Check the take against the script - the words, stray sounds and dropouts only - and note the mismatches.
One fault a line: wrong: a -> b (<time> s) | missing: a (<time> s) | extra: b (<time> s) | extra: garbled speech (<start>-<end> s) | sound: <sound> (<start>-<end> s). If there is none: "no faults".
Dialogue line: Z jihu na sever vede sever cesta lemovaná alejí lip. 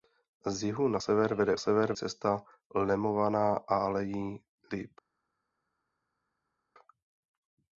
no faults